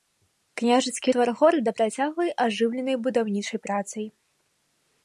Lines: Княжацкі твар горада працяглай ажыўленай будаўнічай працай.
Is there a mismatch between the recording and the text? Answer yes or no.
no